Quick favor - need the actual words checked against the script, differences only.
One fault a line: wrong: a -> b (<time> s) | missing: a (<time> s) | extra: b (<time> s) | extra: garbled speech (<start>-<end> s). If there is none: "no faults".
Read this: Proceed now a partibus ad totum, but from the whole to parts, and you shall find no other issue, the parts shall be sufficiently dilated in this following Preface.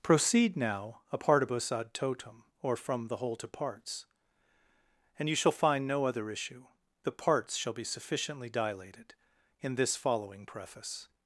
wrong: but -> or (2.6 s)